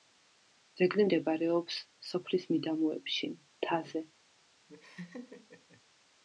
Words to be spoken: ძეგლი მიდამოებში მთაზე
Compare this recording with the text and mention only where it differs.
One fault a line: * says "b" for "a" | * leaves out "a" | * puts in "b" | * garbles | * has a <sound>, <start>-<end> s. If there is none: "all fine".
* puts in "მდებარეობს სოფლის"
* has a laugh, 4.7-5.8 s